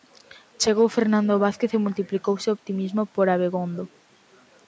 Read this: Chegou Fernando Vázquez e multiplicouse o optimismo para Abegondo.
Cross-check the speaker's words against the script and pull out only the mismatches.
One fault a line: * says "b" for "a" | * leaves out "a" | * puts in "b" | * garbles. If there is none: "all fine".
* says "por" for "para"